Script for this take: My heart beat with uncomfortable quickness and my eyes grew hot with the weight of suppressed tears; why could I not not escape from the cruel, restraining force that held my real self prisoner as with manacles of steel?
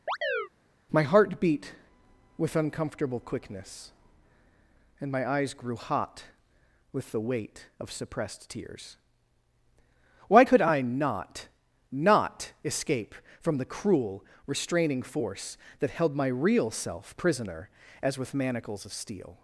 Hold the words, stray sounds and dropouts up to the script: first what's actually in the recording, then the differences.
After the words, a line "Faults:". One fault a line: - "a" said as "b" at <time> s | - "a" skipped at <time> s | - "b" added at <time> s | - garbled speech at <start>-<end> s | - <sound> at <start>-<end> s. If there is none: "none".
My heart beat with uncomfortable quickness and my eyes grew hot with the weight of suppressed tears; why could I not not escape from the cruel, restraining force that held my real self prisoner as with manacles of steel?
Faults:
- chirp at 0.1-0.5 s